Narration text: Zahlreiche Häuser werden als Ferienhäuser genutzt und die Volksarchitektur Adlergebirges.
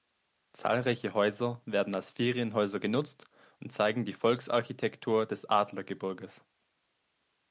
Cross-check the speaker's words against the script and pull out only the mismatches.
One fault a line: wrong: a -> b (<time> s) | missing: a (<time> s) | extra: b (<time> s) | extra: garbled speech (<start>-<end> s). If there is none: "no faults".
extra: zeigen (3.7 s)
extra: des (5.2 s)